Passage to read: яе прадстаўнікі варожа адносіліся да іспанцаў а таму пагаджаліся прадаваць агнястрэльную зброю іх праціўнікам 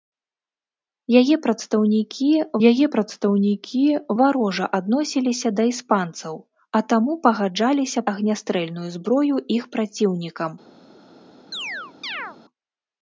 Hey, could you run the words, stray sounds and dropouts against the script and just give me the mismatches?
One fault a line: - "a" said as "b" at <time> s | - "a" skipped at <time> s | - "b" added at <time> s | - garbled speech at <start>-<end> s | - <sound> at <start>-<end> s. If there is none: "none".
- "яе прадстаўнікі" added at 2.7 s
- "прадаваць" skipped at 8.0 s
- chirp at 11.5-12.4 s